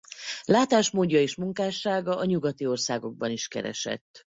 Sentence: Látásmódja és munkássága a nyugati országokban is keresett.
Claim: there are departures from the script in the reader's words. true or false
false